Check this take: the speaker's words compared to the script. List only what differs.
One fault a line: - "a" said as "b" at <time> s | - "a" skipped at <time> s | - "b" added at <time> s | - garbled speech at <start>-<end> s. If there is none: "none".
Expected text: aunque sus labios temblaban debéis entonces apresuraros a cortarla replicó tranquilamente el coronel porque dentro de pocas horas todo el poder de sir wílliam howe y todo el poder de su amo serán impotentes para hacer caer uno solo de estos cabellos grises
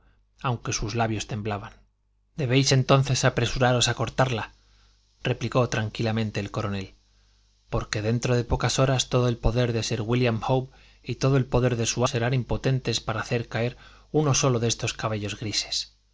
- "amo" skipped at 12.1 s